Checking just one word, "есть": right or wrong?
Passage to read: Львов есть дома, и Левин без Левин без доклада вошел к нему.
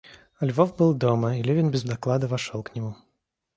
wrong